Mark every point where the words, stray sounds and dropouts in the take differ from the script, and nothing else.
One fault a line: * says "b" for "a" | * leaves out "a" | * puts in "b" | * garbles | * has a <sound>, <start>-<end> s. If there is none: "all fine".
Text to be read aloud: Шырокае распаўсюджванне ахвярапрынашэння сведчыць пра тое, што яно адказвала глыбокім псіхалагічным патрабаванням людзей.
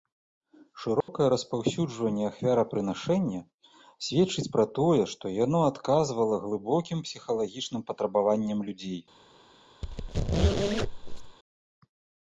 * has a dropout, 1.0-1.1 s
* has a squeak, 9.8-11.4 s